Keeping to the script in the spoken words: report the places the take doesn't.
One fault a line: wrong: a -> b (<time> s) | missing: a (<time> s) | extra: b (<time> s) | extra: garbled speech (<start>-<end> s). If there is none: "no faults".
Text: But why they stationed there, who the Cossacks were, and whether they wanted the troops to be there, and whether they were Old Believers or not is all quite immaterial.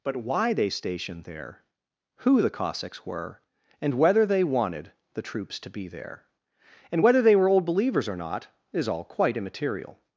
no faults